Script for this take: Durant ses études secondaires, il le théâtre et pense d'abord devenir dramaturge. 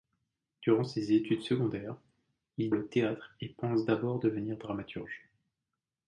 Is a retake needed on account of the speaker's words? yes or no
no